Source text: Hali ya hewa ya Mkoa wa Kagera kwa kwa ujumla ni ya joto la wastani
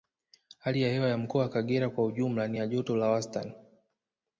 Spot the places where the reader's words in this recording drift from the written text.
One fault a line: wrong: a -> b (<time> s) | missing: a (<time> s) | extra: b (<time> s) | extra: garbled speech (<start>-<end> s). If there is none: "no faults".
missing: kwa (2.0 s)